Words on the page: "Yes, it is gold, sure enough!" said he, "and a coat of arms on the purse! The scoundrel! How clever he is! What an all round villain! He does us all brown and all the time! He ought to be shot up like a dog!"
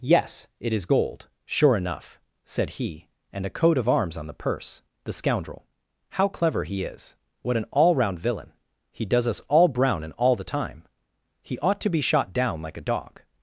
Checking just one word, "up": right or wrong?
wrong